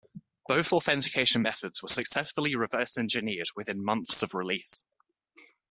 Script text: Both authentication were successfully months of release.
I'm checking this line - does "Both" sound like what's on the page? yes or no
yes